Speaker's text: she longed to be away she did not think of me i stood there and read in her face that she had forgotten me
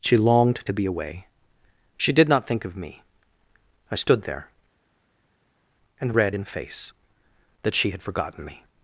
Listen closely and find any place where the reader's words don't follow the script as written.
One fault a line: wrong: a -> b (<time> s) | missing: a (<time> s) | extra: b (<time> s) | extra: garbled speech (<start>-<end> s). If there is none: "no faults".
missing: her (6.4 s)